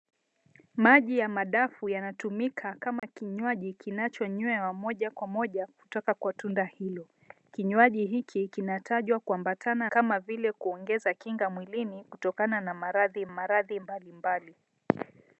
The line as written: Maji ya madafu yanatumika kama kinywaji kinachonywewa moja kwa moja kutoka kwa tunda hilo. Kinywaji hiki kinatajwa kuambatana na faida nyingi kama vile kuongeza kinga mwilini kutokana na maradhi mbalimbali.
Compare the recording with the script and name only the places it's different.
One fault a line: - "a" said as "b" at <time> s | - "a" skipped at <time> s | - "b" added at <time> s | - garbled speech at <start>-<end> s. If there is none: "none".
- "na faida nyingi" skipped at 9.9 s
- "maradhi" added at 13.3 s